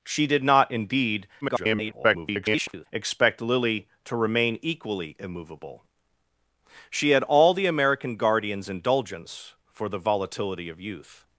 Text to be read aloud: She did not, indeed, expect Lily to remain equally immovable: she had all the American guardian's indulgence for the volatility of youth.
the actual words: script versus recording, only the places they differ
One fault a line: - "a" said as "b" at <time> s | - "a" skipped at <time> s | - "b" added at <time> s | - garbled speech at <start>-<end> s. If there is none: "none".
- garbled speech at 1.4-2.9 s